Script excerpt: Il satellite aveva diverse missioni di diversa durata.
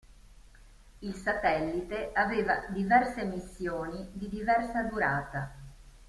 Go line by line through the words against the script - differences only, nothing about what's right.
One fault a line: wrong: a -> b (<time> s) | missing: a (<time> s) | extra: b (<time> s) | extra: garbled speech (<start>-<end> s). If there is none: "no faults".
no faults